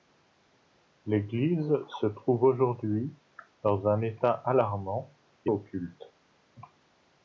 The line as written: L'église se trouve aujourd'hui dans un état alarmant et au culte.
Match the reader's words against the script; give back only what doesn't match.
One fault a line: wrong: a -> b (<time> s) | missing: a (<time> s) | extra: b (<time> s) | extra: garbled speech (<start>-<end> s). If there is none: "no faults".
no faults